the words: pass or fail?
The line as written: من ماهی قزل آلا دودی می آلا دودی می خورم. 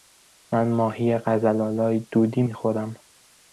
fail